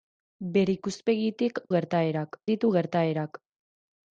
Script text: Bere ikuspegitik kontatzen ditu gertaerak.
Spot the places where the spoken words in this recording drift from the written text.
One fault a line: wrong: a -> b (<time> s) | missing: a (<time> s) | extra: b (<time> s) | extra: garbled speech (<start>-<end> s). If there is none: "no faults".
wrong: kontatzen -> gertaerak (1.8 s)